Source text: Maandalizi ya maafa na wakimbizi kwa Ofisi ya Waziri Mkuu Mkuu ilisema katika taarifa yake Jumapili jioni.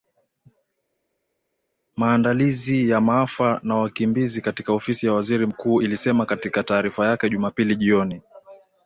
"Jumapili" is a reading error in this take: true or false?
false